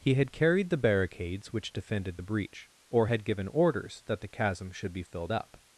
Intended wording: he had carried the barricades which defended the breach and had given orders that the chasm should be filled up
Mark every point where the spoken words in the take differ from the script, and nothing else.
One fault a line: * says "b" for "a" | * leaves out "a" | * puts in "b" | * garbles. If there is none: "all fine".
* says "or" for "and"